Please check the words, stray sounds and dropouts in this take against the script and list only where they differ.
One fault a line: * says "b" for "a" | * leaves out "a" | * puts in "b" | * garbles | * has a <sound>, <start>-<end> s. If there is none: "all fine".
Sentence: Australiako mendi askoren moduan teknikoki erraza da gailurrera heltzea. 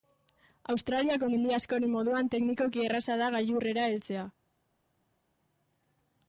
all fine